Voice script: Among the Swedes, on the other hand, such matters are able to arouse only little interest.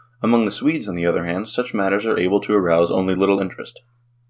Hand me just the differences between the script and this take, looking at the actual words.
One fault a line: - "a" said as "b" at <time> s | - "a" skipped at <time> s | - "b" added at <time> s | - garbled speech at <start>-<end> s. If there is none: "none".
none